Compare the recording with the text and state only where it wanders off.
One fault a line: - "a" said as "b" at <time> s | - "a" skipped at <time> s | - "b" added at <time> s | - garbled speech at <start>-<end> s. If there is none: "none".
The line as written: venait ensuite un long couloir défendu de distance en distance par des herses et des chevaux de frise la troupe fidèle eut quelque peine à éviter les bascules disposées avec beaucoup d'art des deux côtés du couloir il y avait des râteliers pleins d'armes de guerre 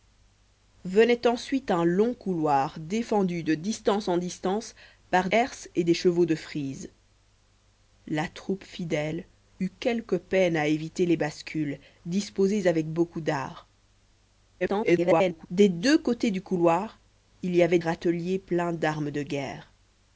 - "des" skipped at 5.3 s
- garbled speech at 14.6-15.5 s
- "des" skipped at 17.8 s